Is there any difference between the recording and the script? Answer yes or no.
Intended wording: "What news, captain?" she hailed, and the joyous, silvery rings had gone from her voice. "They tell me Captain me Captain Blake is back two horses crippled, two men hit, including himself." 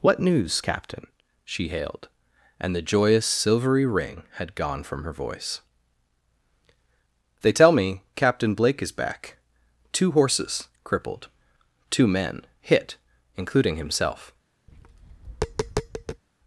yes